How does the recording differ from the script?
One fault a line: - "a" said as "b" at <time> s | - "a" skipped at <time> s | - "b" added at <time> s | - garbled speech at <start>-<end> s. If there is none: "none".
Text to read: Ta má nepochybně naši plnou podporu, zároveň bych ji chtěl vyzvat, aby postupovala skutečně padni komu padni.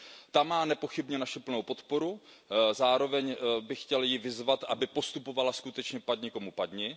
none